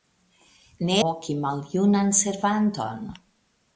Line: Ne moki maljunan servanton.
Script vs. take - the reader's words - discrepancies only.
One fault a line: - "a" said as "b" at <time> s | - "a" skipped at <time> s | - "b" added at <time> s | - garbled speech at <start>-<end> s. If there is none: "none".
none